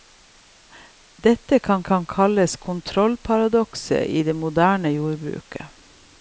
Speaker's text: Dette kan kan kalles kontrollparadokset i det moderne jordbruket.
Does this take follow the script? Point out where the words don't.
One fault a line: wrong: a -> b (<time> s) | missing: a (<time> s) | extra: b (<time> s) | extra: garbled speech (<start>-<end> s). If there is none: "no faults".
no faults